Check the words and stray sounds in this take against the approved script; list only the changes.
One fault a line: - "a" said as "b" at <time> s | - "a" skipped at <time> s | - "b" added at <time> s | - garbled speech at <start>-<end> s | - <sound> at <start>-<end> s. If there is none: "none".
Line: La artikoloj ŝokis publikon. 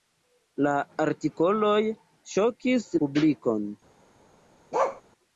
- bark at 4.7-5.0 s